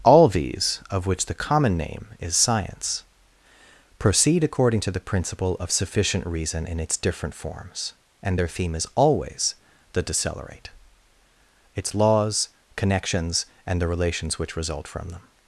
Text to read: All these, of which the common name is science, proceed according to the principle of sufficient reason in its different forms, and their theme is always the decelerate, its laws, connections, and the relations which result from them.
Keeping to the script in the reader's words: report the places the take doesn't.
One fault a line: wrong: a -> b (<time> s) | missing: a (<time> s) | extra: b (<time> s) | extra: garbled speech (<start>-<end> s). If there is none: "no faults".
no faults